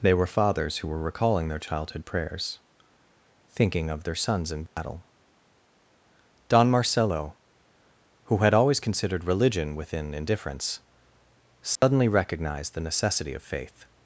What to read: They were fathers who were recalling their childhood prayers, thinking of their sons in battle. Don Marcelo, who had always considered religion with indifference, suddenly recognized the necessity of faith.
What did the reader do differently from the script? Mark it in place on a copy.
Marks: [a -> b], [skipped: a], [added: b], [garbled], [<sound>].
They were fathers who were recalling their childhood prayers, thinking of their sons in battle. [dropout] Don Marcelo, who had always considered religion [with -> within] indifference, suddenly [dropout] recognized the necessity of faith.